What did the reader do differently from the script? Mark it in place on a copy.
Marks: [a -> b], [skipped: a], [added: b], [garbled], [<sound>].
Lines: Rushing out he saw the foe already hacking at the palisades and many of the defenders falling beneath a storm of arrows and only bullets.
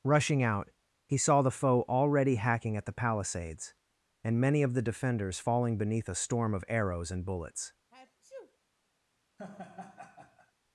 Rushing out he saw the foe already hacking at the palisades and many of the defenders falling beneath a storm of arrows and [skipped: only] bullets. [sneeze] [laugh]